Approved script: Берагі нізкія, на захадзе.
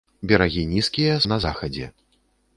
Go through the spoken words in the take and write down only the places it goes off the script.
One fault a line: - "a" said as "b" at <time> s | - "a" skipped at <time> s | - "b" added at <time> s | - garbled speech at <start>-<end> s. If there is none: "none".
none